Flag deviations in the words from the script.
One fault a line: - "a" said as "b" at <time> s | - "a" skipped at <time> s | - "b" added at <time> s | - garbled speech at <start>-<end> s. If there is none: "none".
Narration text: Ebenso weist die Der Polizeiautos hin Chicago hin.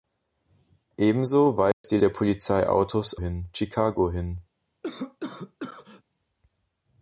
none